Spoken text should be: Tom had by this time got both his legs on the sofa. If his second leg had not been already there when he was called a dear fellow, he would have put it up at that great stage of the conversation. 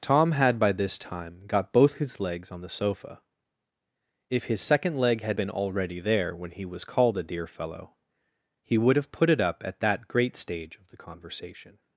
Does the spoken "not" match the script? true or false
false